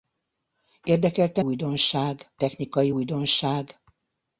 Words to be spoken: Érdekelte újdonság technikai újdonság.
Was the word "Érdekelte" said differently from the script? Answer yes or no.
no